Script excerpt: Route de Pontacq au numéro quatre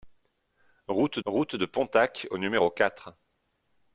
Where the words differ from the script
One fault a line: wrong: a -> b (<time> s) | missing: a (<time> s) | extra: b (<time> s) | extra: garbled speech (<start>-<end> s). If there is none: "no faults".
extra: route (1.2 s)